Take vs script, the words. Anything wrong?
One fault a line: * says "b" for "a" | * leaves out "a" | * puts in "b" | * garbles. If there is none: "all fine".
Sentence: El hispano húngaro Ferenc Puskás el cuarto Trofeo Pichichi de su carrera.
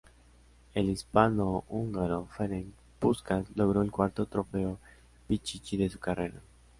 * puts in "logró"